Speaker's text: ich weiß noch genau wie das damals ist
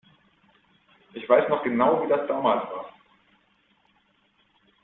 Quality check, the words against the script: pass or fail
fail